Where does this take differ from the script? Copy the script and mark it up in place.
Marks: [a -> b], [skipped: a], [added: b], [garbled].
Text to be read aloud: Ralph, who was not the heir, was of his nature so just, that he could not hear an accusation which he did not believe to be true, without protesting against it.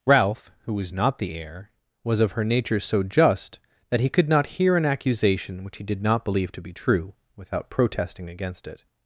Ralph, who was not the heir, was of [his -> her] nature so just, that he could not hear an accusation which he did not believe to be true, without protesting against it.